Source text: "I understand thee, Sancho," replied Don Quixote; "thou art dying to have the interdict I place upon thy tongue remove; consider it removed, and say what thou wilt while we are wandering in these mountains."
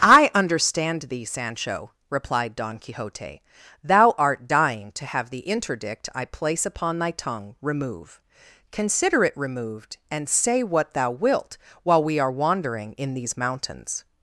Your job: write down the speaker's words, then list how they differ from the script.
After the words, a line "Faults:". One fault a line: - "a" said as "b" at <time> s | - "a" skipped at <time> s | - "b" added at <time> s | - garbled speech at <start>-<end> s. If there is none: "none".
"I understand thee, Sancho," replied Don Quixote; "thou art dying to have the interdict I place upon thy tongue remove; consider it removed, and say what thou wilt while we are wandering in these mountains."
Faults:
none